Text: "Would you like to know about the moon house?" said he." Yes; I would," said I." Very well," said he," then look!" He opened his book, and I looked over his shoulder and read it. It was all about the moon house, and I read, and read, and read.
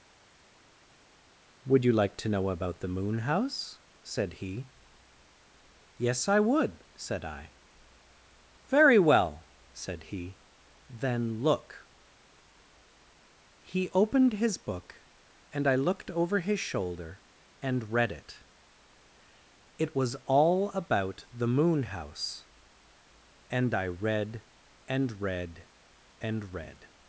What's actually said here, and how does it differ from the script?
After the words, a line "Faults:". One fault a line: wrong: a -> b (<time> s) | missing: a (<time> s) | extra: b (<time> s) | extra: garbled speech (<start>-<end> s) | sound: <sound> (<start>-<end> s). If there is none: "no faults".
"Would you like to know about the moon house?" said he." Yes; I would," said I." Very well," said he," then look!" He opened his book, and I looked over his shoulder and read it. It was all about the moon house, and I read, and read, and read.
Faults:
no faults